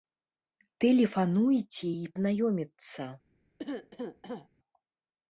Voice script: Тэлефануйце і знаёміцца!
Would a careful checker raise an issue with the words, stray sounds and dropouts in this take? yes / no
yes